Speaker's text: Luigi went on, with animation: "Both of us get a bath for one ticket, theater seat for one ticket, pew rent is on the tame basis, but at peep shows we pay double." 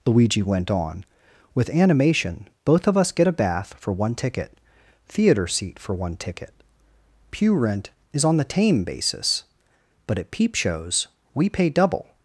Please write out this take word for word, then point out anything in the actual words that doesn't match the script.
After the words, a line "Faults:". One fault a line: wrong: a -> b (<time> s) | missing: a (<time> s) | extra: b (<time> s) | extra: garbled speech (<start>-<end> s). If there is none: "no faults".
Luigi went on, with animation: "Both of us get a bath for one ticket, theater seat for one ticket, pew rent is on the tame basis, but at peep shows we pay double."
Faults:
no faults